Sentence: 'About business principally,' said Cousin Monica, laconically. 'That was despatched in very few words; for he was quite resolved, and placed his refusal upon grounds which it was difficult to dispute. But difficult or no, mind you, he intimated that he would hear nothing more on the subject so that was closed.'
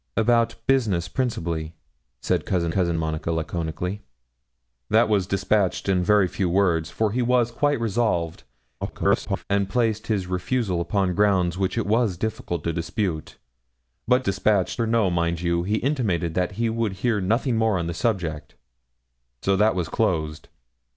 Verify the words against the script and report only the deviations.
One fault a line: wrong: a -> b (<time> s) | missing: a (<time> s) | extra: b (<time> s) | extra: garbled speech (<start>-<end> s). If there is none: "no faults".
extra: Cousin (2.7 s)
extra: garbled speech (8.8-9.4 s)
wrong: difficult -> despatched (14.2 s)